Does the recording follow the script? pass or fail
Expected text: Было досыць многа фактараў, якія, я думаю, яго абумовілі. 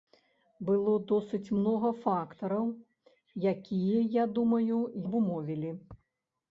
fail